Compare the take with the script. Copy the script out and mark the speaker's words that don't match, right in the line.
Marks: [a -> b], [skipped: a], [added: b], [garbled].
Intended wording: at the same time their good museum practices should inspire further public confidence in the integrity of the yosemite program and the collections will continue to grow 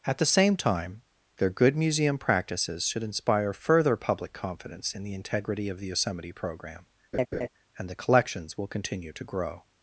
at the same time their good museum practices should inspire further public confidence in the integrity of the yosemite program and the collections will continue to grow